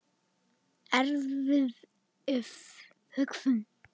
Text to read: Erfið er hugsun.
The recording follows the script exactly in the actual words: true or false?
true